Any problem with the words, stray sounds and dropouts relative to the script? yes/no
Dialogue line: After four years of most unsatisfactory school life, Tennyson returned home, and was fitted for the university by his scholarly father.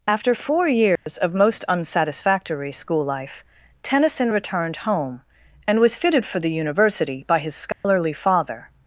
yes